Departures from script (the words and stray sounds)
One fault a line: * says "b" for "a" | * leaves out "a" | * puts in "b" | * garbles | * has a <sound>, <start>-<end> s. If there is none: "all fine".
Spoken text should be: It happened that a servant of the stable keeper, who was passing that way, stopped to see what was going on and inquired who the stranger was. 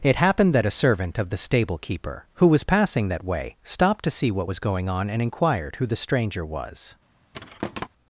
* has a thud, 7.3-7.9 s